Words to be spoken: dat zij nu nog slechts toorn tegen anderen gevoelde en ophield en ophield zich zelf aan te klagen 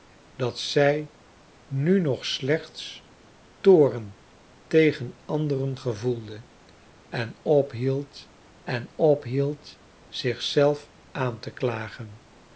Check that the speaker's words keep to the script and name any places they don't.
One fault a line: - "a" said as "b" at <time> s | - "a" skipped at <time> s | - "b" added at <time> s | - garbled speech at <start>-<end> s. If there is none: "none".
none